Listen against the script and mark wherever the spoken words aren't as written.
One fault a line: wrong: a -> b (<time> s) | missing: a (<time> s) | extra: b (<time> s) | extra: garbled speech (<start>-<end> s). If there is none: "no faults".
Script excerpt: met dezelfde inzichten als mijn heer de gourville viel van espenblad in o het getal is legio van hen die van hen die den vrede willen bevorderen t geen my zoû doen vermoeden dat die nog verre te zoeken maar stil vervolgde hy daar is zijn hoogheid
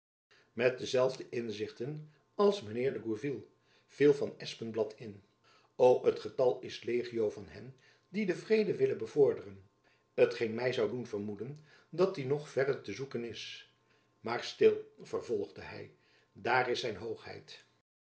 missing: van hen die (8.2 s)
extra: is (13.2 s)